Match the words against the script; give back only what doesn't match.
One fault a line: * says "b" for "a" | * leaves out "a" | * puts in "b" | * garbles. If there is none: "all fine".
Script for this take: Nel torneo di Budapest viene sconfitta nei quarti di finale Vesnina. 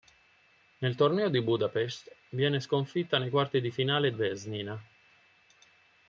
all fine